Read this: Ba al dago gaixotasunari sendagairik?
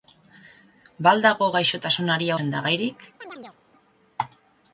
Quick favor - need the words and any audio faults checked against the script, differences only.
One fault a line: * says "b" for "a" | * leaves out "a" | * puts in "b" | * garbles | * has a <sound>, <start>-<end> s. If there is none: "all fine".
* has a chirp, 3.2-3.6 s